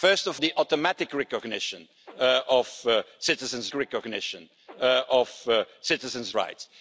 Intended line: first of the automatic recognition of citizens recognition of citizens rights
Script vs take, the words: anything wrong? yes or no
no